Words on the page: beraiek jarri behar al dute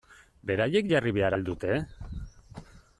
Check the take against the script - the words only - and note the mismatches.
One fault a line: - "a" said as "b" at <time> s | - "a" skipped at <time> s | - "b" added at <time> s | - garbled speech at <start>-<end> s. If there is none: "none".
none